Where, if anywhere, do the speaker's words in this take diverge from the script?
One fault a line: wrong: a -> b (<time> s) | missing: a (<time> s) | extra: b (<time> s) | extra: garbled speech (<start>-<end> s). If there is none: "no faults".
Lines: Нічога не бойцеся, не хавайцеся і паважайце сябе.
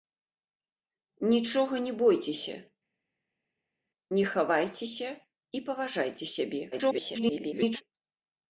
extra: garbled speech (6.7-7.8 s)